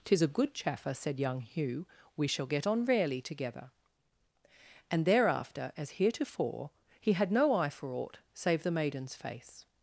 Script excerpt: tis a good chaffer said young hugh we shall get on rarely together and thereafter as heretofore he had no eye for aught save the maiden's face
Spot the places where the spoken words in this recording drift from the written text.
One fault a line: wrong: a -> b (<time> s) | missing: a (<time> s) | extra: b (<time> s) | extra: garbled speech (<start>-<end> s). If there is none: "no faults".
no faults